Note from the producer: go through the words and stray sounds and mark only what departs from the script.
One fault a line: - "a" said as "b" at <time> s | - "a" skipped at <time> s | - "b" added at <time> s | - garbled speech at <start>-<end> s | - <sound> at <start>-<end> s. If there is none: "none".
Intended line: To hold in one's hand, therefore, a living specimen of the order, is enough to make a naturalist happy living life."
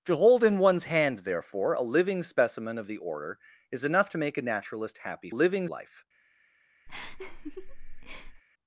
- laugh at 6.9-8.4 s